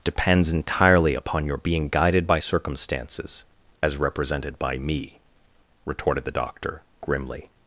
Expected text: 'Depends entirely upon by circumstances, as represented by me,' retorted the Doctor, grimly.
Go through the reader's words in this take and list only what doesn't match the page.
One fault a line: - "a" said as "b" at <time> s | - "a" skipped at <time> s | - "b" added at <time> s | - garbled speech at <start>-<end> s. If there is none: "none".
- "your being guided" added at 1.4 s